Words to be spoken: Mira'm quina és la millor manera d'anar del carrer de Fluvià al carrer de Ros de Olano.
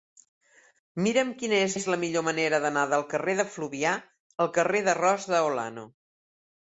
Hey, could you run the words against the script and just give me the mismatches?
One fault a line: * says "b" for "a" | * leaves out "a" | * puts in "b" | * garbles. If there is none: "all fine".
* puts in "és"